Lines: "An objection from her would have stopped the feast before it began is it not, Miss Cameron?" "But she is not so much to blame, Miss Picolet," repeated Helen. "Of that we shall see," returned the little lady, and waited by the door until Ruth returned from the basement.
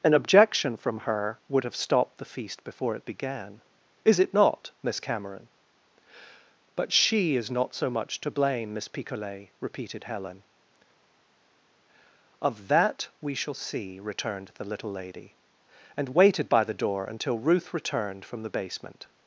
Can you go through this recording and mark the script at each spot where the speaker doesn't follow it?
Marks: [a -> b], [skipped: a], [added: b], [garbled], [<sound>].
"An objection from her would have stopped the feast before it began is it not, Miss Cameron?" "But she is not so much to blame, Miss Picolet," repeated Helen. "Of that we shall see," returned the little lady, and waited by the door until Ruth returned from the basement.